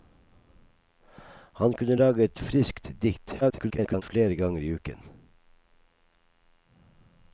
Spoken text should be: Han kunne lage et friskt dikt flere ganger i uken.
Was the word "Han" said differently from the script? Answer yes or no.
no